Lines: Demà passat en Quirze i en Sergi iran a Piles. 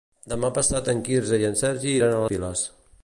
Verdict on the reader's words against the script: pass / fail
pass